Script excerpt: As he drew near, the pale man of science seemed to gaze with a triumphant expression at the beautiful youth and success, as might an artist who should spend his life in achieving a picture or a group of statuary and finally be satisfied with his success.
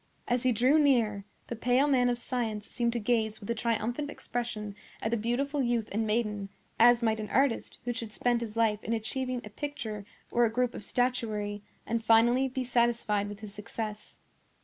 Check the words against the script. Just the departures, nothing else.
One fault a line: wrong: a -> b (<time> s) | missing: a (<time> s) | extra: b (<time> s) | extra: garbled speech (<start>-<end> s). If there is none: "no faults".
wrong: success -> maiden (6.0 s)